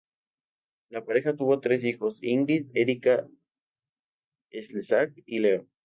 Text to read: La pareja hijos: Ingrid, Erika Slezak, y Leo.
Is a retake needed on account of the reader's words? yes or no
yes